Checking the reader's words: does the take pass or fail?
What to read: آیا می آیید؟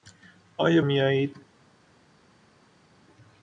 pass